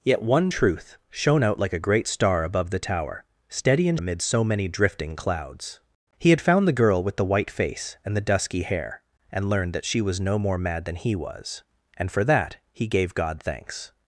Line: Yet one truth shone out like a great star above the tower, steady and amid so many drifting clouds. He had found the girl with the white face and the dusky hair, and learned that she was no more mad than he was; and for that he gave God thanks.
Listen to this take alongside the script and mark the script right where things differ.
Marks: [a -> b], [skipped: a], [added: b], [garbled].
Yet one truth shone out like a great star above the tower, steady and amid so many drifting clouds. He had found the girl with the white face and the dusky hair, and learned that she was no more mad than he was; and for that he gave God thanks.